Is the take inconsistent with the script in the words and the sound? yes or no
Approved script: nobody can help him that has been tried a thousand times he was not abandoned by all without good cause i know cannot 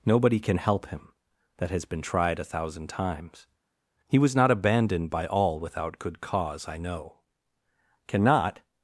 no